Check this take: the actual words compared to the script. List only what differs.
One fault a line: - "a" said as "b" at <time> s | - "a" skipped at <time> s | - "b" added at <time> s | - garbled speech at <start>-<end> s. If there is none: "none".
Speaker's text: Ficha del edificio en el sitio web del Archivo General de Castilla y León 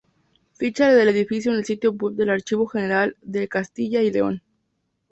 none